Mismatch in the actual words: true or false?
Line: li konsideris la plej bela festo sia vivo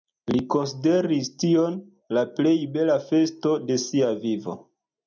true